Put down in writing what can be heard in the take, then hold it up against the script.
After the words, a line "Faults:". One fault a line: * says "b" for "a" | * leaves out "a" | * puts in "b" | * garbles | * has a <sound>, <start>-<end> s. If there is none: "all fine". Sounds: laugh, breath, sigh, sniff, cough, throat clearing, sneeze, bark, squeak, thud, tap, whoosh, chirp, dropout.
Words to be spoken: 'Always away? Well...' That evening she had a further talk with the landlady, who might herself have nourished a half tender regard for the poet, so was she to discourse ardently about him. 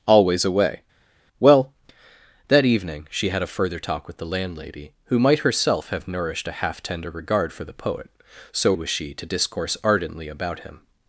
'Always away? Well...' That evening she had a further talk with the landlady, who might herself have nourished a half tender regard for the poet, so was she to discourse ardently about him.
Faults:
all fine